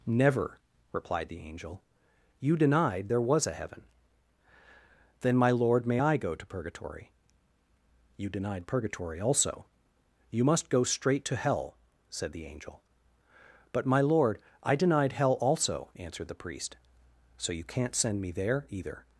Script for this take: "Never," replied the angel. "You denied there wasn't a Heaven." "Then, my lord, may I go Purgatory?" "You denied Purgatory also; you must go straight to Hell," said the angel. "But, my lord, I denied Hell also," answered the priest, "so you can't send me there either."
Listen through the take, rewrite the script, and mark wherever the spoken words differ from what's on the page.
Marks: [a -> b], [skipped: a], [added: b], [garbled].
"Never," replied the angel. "You denied there [wasn't -> was] a Heaven." "Then, my lord, may I go [added: to] Purgatory?" "You denied Purgatory also; you must go straight to Hell," said the angel. "But, my lord, I denied Hell also," answered the priest, "so you can't send me there either."